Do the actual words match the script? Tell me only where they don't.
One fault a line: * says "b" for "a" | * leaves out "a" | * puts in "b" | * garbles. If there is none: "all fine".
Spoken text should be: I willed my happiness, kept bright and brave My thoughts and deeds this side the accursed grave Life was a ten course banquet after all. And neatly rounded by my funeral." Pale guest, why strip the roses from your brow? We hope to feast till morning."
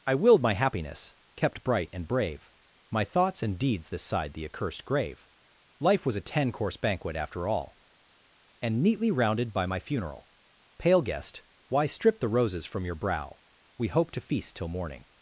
all fine